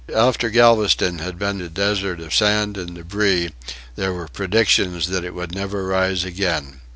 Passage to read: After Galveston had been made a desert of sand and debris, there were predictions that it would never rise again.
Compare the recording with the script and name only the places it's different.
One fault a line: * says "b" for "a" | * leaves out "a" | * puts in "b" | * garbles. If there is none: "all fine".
* leaves out "made"